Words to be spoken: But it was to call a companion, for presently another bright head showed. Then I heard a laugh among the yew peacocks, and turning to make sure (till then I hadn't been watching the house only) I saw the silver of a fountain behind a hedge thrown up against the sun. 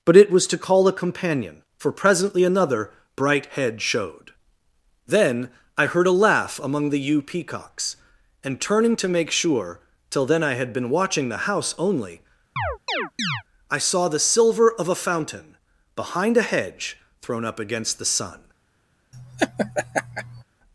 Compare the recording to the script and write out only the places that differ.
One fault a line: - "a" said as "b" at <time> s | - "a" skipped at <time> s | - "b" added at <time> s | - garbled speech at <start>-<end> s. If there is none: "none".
- "hadn't" said as "had" at 10.6 s